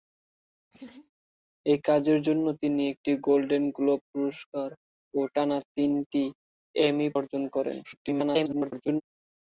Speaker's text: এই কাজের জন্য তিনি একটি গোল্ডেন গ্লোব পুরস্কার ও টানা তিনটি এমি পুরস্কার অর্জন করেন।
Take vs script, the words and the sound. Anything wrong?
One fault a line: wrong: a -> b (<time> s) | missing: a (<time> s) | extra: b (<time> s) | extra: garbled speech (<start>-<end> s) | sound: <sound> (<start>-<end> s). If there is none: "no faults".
sound: laugh (0.7-1.1 s)
missing: পুরস্কার (7.1 s)
extra: garbled speech (7.8-9.0 s)